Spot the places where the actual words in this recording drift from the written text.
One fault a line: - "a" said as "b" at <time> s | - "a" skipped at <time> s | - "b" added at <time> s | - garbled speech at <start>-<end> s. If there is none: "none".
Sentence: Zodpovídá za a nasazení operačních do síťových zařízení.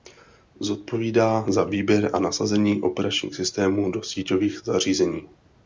- "výběr" added at 1.6 s
- "systémů" added at 3.4 s